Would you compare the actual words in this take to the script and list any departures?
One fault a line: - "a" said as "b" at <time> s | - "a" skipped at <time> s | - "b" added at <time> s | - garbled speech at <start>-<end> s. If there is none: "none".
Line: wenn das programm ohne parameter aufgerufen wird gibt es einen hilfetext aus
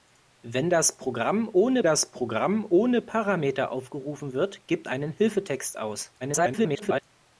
- "das programm ohne" added at 1.8 s
- "es" skipped at 4.9 s
- garbled speech at 6.2-7.0 s